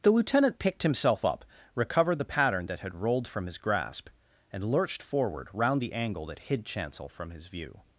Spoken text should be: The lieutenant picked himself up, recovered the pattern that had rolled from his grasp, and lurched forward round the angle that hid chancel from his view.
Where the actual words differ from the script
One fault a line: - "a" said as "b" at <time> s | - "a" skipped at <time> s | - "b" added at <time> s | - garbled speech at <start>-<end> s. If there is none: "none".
none